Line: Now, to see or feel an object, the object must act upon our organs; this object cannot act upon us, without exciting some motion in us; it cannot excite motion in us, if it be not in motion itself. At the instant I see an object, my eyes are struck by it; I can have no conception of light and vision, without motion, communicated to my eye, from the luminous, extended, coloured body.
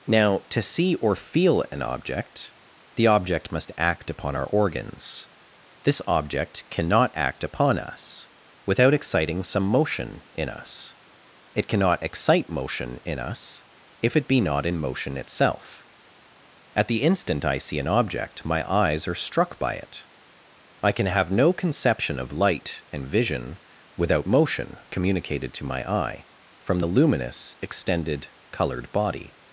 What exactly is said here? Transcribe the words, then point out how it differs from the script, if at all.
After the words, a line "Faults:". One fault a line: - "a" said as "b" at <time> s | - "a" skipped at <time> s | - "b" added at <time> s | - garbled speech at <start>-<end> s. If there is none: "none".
Now, to see or feel an object, the object must act upon our organs; this object cannot act upon us, without exciting some motion in us; it cannot excite motion in us, if it be not in motion itself. At the instant I see an object, my eyes are struck by it; I can have no conception of light and vision, without motion, communicated to my eye, from the luminous, extended, coloured body.
Faults:
none